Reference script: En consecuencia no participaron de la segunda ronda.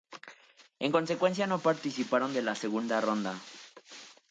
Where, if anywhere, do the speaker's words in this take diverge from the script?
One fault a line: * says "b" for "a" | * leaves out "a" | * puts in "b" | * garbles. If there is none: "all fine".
all fine